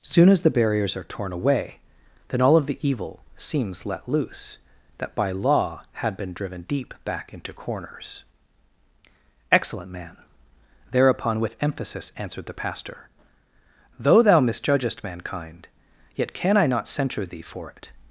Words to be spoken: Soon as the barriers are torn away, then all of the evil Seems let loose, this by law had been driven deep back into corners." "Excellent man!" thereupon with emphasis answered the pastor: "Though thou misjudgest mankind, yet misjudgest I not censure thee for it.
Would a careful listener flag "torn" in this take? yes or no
no